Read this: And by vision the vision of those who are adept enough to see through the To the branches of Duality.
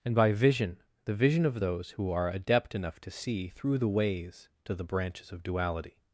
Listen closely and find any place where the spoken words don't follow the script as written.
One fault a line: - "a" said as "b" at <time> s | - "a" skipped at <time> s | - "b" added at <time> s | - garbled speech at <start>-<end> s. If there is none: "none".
- "Ways" added at 3.9 s